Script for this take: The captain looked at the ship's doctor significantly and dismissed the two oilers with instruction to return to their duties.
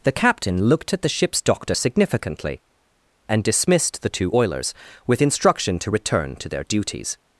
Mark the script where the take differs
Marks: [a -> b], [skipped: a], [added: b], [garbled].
The captain looked at the ship's doctor significantly and dismissed the two oilers with instruction to return to their duties.